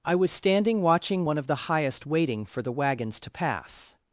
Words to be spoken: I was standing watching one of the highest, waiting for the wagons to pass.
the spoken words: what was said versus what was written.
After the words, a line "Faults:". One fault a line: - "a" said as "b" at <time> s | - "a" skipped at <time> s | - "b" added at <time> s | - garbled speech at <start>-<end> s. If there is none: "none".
I was standing watching one of the highest, waiting for the wagons to pass.
Faults:
none